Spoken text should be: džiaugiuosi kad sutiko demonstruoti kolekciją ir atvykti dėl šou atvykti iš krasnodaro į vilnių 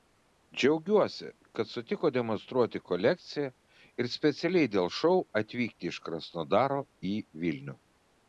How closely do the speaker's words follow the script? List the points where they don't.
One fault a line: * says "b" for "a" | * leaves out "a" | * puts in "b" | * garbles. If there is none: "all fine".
* says "specialiai" for "atvykti"